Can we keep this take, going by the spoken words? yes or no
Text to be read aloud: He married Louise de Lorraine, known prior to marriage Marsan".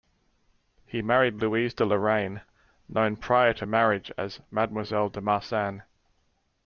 no